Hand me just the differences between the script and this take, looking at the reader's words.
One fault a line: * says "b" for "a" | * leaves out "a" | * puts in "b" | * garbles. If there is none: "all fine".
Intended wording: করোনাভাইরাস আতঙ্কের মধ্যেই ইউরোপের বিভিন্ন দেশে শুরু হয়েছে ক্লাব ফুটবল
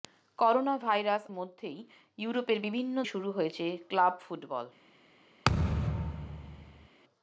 * leaves out "আতঙ্কের"
* leaves out "দেশে"